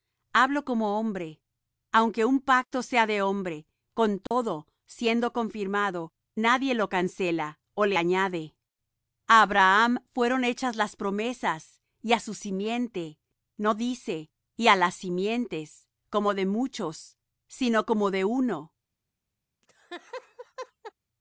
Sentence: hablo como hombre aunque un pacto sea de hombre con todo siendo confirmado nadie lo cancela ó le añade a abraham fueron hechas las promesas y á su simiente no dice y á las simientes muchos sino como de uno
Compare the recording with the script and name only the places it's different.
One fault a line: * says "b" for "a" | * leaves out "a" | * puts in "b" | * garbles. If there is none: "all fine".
* puts in "como de"